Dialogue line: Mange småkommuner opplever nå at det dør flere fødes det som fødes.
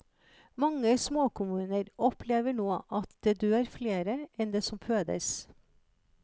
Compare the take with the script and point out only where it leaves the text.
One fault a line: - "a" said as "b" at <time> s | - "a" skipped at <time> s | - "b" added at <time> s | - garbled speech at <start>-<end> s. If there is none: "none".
- "fødes" said as "enn" at 4.4 s